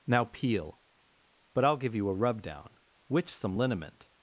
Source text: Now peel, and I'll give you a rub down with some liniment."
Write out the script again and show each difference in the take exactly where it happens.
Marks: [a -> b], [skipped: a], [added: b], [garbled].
Now peel, [and -> but] I'll give you a rub down [with -> which] some liniment."